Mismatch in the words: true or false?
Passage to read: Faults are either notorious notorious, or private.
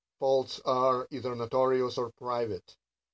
true